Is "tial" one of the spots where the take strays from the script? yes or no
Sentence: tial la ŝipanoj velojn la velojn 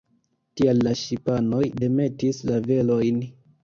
no